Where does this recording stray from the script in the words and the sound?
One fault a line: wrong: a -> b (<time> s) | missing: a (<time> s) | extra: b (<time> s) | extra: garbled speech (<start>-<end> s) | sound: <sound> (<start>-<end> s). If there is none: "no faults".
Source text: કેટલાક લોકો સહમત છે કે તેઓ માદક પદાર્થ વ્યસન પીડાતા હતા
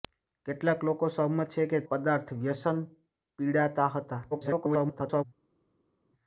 missing: તેઓ માદક (1.8 s)
extra: garbled speech (4.3-5.2 s)